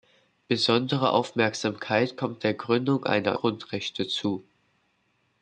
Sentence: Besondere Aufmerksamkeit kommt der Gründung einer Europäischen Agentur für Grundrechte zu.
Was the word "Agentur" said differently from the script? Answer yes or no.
yes